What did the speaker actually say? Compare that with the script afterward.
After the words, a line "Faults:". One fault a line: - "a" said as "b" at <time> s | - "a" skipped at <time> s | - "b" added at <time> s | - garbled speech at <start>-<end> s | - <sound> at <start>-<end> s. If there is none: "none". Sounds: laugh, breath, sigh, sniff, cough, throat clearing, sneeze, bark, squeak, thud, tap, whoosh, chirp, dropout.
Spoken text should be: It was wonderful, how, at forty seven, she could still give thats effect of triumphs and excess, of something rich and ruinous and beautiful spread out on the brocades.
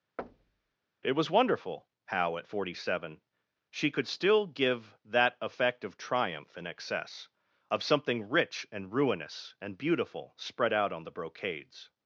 It was wonderful, how, at forty seven, she could still give that effect of triumph and excess, of something rich and ruinous and beautiful spread out on the brocades.
Faults:
- thud at 0.2-0.8 s
- "thats" said as "that" at 5.0 s
- "triumphs" said as "triumph" at 6.0 s